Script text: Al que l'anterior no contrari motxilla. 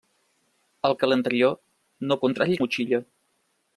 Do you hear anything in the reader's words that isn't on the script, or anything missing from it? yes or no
no